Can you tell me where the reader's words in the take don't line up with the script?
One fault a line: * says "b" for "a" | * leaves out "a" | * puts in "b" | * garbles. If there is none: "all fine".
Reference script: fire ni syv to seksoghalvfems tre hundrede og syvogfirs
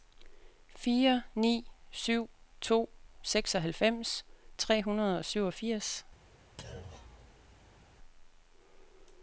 all fine